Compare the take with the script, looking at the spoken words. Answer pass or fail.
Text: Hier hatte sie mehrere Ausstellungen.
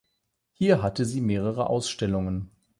pass